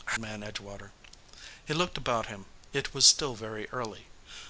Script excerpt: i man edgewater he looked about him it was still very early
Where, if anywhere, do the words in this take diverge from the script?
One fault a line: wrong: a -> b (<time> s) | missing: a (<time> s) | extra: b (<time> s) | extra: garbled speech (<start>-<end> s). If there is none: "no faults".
no faults